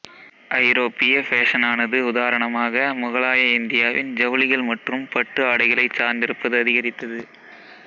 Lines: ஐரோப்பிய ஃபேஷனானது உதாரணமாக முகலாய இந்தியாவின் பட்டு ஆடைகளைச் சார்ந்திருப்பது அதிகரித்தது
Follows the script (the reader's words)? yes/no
no